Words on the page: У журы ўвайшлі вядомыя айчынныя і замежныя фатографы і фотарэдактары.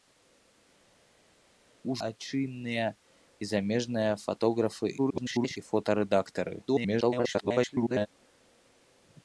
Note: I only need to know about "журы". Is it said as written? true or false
false